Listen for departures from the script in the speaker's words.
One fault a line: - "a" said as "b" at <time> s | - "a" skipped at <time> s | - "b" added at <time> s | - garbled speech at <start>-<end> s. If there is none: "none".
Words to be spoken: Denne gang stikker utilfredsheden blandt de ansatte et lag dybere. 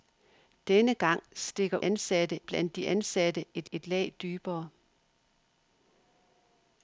- "utilfredsheden" said as "ansatte" at 1.8 s
- "et" added at 3.7 s